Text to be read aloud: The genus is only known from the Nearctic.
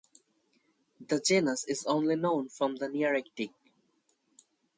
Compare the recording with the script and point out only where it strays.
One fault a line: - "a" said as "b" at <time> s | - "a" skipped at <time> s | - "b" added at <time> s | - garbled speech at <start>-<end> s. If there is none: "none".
none